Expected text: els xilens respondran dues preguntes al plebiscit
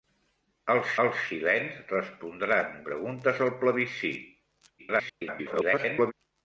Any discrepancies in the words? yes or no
yes